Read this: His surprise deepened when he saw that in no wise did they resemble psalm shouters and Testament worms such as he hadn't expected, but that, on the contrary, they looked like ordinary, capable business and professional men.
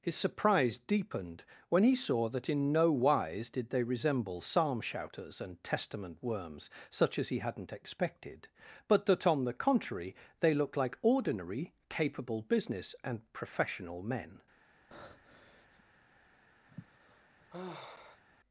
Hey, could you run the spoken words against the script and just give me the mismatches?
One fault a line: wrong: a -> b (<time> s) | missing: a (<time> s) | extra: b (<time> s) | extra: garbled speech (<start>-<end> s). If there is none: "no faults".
no faults